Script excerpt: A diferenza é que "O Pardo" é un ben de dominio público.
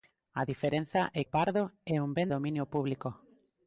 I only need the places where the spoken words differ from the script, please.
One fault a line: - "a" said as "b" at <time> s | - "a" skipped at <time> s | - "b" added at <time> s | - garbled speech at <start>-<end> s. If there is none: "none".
- "que" skipped at 1.2 s
- "de" skipped at 2.3 s